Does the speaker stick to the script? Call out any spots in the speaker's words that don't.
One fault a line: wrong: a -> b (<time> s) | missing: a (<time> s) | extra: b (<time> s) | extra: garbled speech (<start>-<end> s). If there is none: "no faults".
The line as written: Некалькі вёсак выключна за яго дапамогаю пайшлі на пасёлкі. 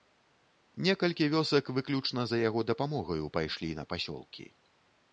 no faults